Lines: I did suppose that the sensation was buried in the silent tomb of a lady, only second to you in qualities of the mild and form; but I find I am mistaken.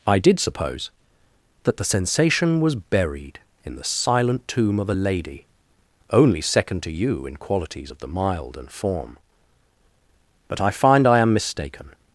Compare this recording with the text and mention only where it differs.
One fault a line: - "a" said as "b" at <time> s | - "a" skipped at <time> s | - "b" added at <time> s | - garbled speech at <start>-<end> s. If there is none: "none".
none